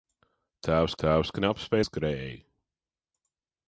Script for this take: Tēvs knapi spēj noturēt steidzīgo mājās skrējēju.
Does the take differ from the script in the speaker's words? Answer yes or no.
yes